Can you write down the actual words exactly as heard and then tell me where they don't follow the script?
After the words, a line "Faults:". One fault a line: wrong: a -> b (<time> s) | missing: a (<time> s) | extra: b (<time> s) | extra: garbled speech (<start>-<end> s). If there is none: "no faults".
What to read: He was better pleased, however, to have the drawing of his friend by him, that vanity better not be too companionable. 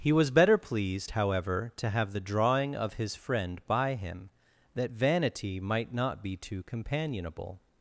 He was better pleased, however, to have the drawing of his friend by him, that vanity might not be too companionable.
Faults:
wrong: better -> might (5.6 s)